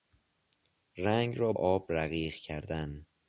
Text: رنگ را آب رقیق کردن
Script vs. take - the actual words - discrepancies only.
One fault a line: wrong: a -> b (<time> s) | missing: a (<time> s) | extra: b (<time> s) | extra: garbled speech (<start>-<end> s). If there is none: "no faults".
no faults